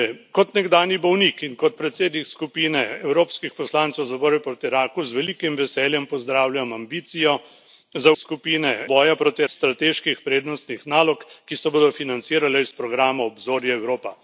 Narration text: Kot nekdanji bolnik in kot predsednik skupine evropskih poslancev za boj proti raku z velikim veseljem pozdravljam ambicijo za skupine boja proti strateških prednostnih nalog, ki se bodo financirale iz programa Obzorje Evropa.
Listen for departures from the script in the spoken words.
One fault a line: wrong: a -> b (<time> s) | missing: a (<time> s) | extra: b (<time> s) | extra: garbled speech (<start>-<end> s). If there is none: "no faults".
no faults